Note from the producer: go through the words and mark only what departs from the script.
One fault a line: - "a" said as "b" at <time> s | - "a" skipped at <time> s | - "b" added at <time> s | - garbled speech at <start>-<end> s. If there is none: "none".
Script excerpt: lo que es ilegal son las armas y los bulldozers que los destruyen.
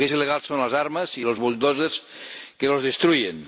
none